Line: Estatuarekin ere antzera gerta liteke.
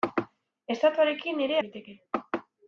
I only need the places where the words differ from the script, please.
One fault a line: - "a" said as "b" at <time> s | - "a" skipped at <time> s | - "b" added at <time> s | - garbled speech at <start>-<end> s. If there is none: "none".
- "antzera gerta" skipped at 1.6 s